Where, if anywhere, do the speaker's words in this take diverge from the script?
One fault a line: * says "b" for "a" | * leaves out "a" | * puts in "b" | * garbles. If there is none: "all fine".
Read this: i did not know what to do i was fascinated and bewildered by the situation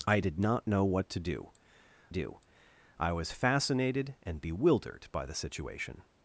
* puts in "do"